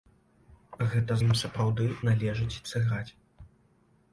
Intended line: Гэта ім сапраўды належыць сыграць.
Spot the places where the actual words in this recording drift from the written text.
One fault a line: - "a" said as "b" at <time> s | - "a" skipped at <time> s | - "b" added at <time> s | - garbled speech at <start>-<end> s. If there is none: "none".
none